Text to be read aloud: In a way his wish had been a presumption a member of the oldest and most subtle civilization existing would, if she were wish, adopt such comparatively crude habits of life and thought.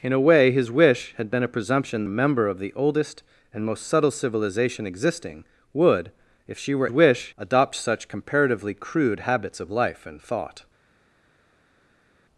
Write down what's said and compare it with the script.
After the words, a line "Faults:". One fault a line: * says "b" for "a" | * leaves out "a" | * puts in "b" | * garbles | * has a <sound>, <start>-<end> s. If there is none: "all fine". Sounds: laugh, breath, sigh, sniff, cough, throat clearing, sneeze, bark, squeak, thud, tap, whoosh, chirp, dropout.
In a way his wish had been a presumption a member of the oldest and most subtle civilization existing would, if she were wish, adopt such comparatively crude habits of life and thought.
Faults:
all fine